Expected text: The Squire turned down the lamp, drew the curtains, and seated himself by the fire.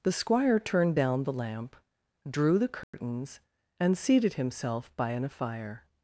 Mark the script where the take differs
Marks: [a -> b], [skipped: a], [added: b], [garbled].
The Squire turned down the lamp, drew the curtains, and seated himself by [the -> an] fire.